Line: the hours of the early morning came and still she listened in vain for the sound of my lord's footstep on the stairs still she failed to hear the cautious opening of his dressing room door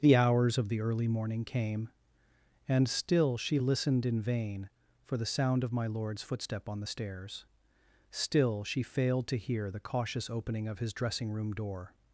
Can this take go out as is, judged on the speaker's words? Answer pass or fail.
pass